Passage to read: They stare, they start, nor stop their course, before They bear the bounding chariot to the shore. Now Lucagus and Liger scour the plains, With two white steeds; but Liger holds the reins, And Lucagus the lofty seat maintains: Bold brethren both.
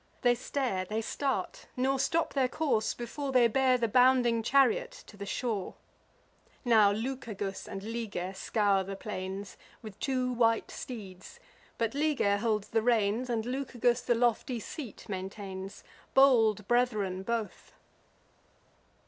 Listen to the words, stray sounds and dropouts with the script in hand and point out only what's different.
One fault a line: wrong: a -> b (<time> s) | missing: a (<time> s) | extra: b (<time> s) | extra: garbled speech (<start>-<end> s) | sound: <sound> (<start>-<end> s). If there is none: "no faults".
no faults